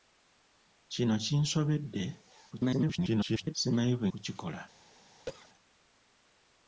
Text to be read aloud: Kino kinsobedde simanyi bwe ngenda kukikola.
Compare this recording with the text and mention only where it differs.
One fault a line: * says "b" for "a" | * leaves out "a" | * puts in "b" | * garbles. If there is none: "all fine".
* garbles
* leaves out "ngenda"